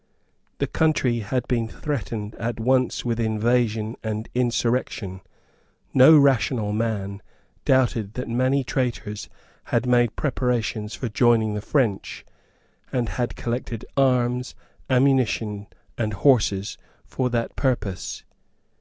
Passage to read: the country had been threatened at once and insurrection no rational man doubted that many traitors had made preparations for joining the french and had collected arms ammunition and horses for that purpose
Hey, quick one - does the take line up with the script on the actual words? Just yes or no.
no